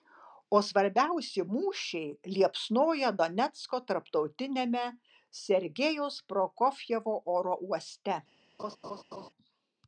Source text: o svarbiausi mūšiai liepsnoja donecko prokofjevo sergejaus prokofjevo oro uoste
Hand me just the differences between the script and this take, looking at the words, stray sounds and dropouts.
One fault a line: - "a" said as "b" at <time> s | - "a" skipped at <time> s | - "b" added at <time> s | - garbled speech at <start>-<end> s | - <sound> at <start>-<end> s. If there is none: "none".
- "prokofjevo" said as "tarptautiniame" at 3.9 s
- laugh at 8.6-9.3 s